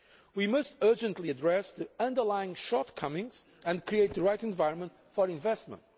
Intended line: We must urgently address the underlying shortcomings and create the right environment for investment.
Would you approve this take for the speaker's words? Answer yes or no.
yes